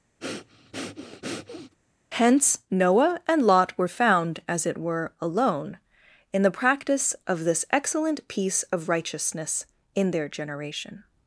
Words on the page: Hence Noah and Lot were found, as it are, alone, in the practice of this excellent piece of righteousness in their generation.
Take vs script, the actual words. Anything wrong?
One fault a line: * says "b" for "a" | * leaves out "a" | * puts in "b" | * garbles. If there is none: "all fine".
* says "were" for "are"